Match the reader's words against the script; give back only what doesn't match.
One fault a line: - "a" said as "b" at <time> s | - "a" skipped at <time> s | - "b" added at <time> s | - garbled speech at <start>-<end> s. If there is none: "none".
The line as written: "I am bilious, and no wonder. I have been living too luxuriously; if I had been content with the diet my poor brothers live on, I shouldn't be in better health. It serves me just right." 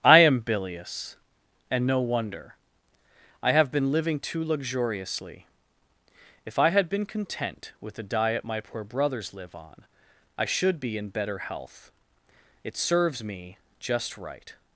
- "shouldn't" said as "should" at 10.4 s